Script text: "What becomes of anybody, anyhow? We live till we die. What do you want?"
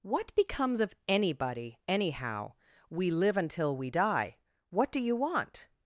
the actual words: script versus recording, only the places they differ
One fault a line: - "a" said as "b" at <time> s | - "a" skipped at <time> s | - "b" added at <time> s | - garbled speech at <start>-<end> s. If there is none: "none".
- "till" said as "until" at 3.4 s